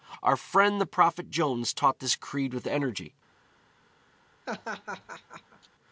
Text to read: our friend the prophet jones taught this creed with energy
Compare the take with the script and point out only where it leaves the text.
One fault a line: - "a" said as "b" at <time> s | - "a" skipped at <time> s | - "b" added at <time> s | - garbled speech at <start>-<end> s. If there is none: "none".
none